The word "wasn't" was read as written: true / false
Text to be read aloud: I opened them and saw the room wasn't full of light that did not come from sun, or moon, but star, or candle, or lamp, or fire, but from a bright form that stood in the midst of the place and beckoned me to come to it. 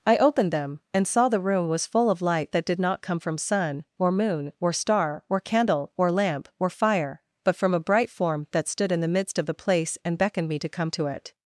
false